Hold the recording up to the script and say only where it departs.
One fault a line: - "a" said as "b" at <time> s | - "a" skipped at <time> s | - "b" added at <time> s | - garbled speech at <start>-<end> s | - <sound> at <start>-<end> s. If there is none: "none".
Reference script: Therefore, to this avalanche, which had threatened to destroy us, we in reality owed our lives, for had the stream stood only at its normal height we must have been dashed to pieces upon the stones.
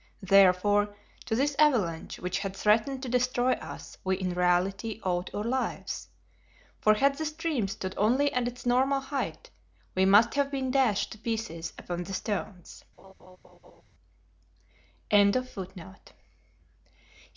- laugh at 13.0-13.8 s